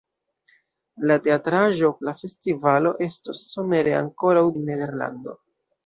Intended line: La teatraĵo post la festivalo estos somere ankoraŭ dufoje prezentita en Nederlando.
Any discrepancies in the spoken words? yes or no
yes